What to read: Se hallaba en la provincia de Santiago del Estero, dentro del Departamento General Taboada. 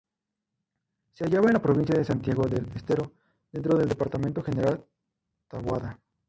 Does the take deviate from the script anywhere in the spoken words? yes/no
no